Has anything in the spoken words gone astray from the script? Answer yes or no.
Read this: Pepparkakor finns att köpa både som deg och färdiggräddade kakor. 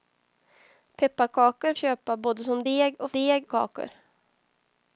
yes